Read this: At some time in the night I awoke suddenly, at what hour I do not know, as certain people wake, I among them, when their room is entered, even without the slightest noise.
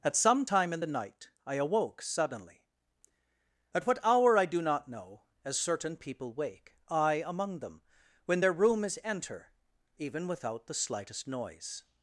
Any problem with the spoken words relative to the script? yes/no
yes